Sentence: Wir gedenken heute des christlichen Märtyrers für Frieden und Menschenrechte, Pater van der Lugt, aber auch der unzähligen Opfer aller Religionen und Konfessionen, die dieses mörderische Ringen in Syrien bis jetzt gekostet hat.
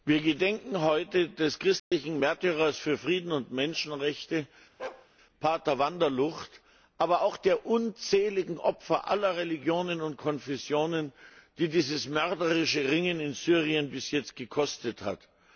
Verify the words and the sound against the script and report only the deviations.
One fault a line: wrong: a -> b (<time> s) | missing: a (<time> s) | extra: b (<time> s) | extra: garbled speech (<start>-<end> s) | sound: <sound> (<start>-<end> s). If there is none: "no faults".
sound: dropout (1.8-1.9 s)
sound: bark (4.8-5.1 s)